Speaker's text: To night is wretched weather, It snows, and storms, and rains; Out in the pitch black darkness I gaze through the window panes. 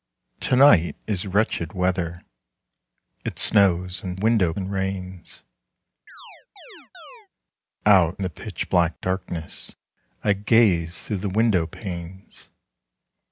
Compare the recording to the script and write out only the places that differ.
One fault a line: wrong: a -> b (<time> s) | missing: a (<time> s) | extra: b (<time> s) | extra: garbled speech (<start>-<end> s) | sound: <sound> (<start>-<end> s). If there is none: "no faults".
wrong: storms -> window (4.2 s)
sound: chirp (6.1-7.3 s)
missing: in (8.2 s)